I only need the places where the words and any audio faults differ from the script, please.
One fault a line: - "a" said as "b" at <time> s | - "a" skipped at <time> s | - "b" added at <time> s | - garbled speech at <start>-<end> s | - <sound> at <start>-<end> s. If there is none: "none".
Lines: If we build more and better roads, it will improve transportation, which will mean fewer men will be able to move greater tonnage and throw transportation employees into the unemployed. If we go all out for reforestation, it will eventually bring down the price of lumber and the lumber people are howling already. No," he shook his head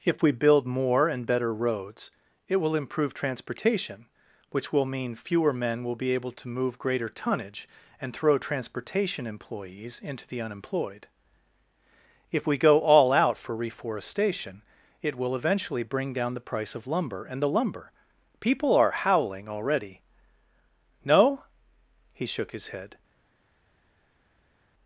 none